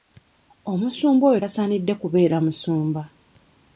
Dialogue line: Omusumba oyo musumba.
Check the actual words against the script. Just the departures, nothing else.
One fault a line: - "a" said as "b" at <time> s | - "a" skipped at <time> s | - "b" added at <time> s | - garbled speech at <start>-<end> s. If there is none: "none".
- "tasaanidde kubeera" added at 1.4 s